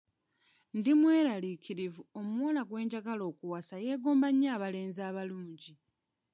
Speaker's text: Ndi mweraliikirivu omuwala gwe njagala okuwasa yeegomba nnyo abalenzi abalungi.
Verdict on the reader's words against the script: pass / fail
pass